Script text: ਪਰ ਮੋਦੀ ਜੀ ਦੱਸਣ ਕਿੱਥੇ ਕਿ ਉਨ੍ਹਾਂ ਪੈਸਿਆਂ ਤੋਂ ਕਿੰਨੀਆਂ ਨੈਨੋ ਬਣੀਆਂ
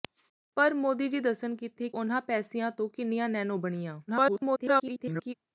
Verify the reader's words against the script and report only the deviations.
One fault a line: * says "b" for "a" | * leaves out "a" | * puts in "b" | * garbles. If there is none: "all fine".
* leaves out "ਕਿ"
* garbles